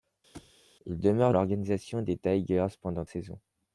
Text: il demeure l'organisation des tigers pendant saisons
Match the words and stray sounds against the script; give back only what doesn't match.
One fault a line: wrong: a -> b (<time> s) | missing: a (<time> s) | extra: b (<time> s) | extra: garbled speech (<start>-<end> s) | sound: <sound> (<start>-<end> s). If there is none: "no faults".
sound: thud (0.3-0.5 s)